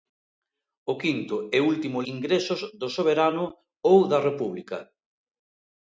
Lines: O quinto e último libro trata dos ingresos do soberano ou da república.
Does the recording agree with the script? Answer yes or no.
no